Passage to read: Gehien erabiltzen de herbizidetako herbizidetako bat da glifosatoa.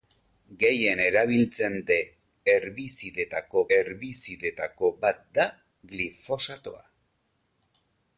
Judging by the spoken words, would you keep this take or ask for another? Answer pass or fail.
pass